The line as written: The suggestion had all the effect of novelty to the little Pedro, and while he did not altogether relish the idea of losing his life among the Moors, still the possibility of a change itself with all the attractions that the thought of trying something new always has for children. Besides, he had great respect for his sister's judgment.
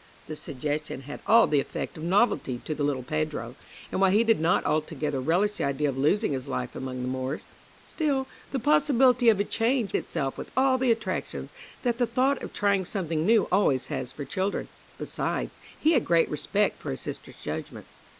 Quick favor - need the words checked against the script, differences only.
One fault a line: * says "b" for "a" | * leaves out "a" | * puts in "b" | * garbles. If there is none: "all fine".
all fine